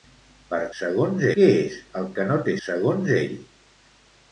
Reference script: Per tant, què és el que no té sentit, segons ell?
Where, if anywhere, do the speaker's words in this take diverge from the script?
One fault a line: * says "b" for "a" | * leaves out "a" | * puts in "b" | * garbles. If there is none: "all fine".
* says "segons" for "tant"
* leaves out "sentit"